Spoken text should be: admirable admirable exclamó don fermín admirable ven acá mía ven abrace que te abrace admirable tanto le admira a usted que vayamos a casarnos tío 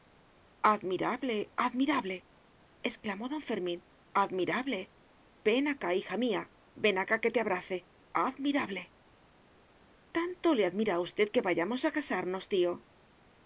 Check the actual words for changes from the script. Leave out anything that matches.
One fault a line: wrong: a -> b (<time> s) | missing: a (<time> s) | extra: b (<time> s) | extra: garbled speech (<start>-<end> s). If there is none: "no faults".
extra: hija (6.0 s)
wrong: abrace -> acá (7.0 s)